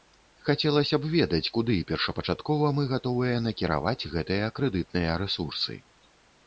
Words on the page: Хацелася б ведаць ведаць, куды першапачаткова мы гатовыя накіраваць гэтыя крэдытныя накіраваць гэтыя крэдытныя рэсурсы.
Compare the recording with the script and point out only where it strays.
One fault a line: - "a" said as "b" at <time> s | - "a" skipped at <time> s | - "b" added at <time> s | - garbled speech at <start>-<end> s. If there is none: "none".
- "ведаць" skipped at 1.5 s
- "накіраваць гэтыя крэдытныя" skipped at 5.1 s